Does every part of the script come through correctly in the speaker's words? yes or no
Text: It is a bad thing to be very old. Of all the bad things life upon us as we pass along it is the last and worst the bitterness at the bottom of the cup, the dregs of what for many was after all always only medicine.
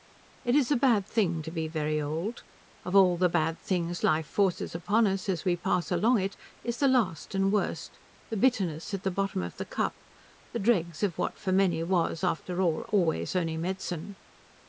no